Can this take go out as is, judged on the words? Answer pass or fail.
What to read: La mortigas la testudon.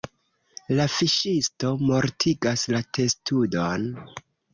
fail